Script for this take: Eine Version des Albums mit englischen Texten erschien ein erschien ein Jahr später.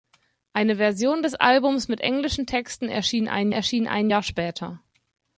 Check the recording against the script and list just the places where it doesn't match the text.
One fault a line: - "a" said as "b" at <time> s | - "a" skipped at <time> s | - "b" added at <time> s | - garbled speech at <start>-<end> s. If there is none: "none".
none